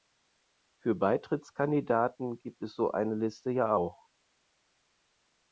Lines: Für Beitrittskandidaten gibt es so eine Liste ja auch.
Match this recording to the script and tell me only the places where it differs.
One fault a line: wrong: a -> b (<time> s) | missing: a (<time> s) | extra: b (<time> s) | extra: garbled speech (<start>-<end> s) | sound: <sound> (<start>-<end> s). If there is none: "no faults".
no faults